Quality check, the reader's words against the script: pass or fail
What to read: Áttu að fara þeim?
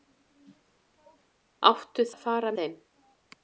pass